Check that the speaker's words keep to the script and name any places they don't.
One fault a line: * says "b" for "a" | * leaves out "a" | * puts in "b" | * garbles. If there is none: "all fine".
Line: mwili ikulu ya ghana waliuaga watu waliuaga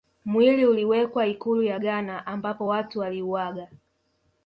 * puts in "uliwekwa"
* says "ambapo" for "waliuaga"